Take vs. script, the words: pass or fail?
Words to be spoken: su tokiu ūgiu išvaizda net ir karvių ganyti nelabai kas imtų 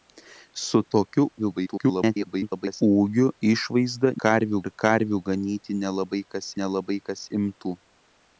fail